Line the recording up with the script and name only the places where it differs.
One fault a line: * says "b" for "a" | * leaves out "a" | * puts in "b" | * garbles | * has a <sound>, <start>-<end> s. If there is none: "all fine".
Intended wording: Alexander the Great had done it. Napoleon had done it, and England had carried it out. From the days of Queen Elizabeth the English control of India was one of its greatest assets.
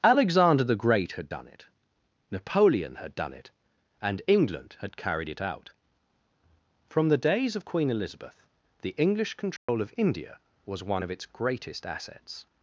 * has a dropout, 9.6-9.7 s